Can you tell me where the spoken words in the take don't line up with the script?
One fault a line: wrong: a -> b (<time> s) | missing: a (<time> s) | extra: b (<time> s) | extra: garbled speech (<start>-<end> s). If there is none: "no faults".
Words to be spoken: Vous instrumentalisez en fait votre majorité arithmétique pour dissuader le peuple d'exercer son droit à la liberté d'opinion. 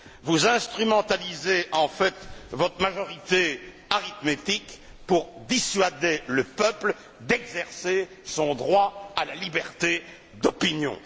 no faults